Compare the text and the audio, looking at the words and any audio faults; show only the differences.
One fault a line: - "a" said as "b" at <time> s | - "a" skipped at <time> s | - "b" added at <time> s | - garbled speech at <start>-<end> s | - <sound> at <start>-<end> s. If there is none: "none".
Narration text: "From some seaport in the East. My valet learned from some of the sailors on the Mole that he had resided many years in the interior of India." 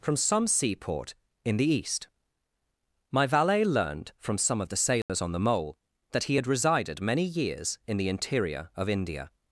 - dropout at 5.0-5.1 s